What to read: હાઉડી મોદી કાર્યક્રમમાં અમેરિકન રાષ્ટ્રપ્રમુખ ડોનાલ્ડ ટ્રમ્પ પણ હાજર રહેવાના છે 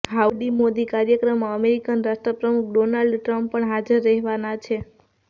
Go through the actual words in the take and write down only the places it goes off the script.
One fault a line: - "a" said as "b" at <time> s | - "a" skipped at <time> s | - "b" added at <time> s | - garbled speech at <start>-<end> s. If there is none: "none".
none